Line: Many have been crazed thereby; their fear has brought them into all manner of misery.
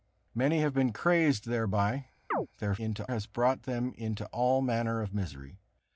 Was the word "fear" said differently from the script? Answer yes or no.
yes